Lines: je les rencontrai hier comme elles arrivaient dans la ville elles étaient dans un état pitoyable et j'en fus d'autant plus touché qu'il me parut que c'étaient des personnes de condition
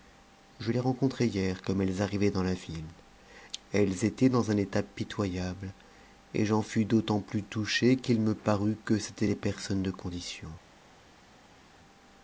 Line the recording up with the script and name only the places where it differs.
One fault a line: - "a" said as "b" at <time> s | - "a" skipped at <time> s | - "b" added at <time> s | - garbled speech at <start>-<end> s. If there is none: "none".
none